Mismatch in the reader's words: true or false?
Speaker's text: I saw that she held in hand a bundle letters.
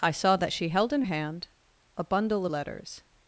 false